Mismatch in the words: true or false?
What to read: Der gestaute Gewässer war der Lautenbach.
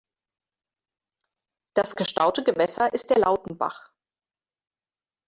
true